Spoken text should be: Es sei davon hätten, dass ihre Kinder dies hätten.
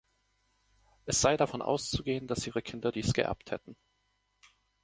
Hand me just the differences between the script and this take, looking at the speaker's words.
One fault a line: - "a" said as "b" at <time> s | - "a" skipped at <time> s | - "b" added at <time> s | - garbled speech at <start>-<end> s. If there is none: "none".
- "hätten" said as "auszugehen" at 1.6 s
- "geerbt" added at 3.1 s